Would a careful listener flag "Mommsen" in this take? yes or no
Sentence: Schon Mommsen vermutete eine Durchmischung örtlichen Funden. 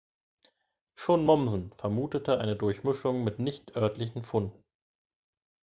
no